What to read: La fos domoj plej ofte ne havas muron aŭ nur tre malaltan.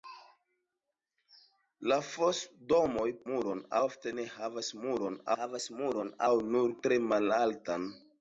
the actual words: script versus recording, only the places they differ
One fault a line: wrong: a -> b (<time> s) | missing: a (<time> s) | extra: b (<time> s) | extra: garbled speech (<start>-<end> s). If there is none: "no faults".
wrong: plej -> muron (3.3 s)
extra: havas muron (5.3 s)